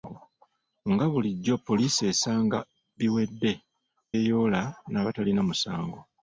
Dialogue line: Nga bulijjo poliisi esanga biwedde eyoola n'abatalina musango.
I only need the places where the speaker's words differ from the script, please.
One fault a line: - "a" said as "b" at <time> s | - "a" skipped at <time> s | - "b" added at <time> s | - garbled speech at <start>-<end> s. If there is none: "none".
none